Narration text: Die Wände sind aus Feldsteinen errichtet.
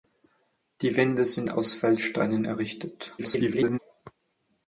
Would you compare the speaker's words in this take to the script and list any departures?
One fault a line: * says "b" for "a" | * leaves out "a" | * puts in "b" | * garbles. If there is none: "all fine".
* garbles